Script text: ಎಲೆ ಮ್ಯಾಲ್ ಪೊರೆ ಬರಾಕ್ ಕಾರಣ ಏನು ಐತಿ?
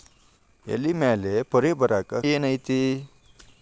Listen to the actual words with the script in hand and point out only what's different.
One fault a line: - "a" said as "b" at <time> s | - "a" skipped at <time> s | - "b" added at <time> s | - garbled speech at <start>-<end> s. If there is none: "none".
- "ಕಾರಣ" skipped at 2.2 s